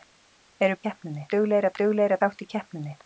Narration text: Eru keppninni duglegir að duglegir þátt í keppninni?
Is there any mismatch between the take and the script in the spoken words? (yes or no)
no